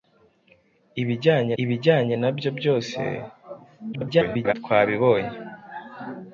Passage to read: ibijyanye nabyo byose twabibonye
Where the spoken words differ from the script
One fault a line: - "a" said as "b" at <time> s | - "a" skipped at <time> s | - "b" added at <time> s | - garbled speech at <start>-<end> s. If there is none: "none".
- "ibijyanye" added at 1.6 s
- garbled speech at 3.9-4.5 s